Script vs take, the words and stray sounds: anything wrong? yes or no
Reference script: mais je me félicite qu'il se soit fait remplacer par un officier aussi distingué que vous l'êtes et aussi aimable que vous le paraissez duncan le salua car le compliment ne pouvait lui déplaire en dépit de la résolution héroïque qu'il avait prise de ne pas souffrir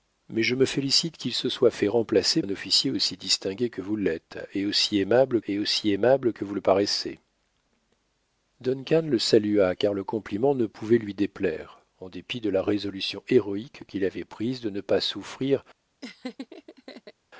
yes